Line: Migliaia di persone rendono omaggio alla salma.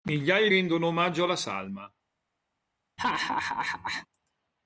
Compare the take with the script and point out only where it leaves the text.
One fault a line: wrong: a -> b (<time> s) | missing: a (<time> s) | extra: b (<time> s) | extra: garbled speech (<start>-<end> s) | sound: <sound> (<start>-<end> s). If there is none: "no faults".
missing: di persone (0.5 s)
sound: laugh (3.0-4.1 s)